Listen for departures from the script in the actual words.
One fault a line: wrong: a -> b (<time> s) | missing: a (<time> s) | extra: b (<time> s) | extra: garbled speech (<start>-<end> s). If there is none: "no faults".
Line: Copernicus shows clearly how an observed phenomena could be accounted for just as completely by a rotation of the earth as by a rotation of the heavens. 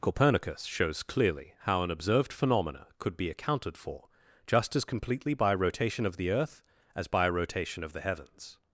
no faults